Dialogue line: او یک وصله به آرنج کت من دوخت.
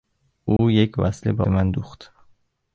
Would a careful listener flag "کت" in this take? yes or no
yes